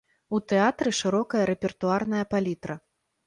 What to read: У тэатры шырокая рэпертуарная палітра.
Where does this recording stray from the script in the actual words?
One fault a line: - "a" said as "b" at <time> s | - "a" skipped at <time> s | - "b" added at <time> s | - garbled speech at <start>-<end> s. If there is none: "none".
none